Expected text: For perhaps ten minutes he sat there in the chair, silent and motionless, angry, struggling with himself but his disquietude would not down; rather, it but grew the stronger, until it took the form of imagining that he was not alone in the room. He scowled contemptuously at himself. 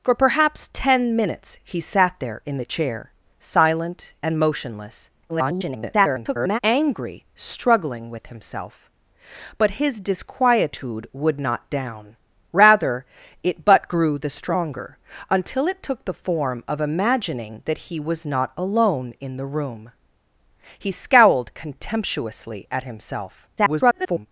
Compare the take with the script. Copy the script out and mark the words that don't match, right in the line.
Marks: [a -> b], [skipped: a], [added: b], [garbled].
For perhaps ten minutes he sat there in the chair, silent and motionless, [garbled] angry, struggling with himself but his disquietude would not down; rather, it but grew the stronger, until it took the form of imagining that he was not alone in the room. He scowled contemptuously at himself. [garbled]